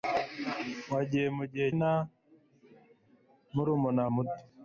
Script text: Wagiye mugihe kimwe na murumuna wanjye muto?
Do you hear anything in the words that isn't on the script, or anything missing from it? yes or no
yes